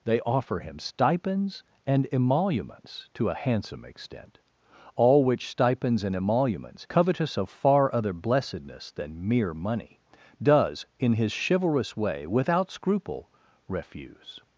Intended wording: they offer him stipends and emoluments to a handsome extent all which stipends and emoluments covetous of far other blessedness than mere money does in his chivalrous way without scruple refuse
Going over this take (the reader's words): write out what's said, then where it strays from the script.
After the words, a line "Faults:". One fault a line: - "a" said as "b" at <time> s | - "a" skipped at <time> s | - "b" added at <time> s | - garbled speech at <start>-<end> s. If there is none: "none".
they offer him stipends and emoluments to a handsome extent all which stipends and emoluments covetous of far other blessedness than mere money does in his chivalrous way without scruple refuse
Faults:
none